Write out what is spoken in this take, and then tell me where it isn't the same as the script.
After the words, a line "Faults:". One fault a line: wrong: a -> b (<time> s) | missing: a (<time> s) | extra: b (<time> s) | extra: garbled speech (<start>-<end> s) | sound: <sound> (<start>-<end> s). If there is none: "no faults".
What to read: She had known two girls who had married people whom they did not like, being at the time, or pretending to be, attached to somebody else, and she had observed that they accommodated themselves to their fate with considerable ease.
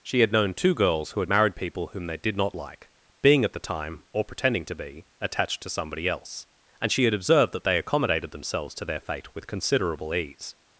She had known two girls who had married people whom they did not like, being at the time, or pretending to be, attached to somebody else, and she had observed that they accommodated themselves to their fate with considerable ease.
Faults:
no faults